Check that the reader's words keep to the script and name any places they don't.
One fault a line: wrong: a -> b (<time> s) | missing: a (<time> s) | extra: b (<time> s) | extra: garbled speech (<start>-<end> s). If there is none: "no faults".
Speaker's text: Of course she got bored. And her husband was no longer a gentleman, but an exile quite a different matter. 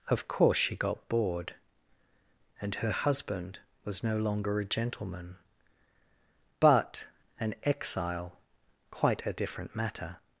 no faults